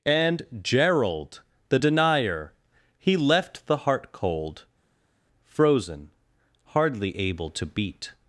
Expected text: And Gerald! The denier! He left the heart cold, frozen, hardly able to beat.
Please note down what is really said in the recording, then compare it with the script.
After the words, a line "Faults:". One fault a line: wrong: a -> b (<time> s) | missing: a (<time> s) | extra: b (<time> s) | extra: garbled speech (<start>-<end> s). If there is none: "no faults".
And Gerald! The denier! He left the heart cold, frozen, hardly able to beat.
Faults:
no faults